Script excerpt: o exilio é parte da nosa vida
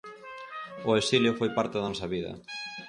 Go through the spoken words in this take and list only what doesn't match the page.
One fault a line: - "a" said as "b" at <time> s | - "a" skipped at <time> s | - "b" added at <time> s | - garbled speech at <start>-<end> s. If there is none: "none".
- "é" said as "foi" at 1.4 s